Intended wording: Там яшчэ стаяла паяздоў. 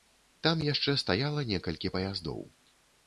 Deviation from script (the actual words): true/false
true